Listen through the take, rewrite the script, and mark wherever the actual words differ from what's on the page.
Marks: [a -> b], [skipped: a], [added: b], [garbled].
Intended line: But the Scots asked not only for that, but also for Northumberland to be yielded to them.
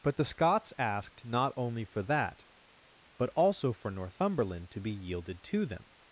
But the Scots asked not only for that, but also for Northumberland to be yielded to them.